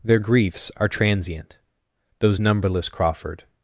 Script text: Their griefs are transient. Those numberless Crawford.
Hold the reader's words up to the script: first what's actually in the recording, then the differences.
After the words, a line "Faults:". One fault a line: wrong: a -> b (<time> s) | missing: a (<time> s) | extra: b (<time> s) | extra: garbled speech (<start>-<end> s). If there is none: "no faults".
Their griefs are transient. Those numberless Crawford.
Faults:
no faults